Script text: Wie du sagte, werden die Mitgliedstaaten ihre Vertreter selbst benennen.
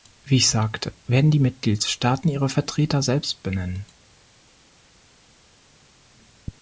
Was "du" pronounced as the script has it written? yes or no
no